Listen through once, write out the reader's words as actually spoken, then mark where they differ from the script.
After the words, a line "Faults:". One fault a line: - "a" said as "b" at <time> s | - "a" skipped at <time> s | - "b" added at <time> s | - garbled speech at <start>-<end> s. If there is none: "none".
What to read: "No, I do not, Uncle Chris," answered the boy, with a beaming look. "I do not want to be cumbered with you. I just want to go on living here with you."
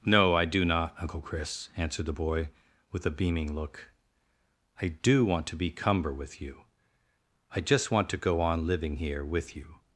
"No, I do not, Uncle Chris," answered the boy, with a beaming look. "I do want to be cumber with you. I just want to go on living here with you."
Faults:
- "not" skipped at 5.2 s
- "cumbered" said as "cumber" at 5.7 s